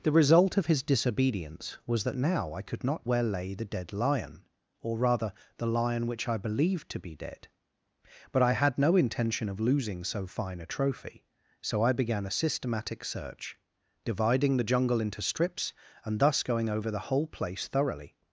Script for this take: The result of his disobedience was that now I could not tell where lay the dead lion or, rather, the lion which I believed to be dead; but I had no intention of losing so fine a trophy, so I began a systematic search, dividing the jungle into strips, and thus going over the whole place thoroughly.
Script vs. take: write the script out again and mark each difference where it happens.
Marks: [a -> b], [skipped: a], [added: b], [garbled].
The result of his disobedience was that now I could not [skipped: tell] where lay the dead lion or, rather, the lion which I believed to be dead; but I had no intention of losing so fine a trophy, so I began a systematic search, dividing the jungle into strips, and thus going over the whole place thoroughly.